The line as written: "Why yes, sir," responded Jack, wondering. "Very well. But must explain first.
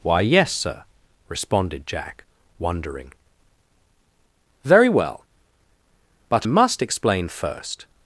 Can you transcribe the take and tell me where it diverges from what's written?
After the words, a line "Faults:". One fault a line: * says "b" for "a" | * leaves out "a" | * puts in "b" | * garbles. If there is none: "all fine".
"Why yes, sir," responded Jack, wondering. "Very well. But must explain first.
Faults:
all fine